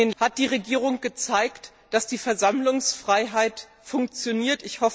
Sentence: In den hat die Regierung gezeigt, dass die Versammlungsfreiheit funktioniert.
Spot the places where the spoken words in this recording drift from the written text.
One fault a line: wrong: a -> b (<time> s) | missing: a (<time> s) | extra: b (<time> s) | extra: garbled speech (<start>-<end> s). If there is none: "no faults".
no faults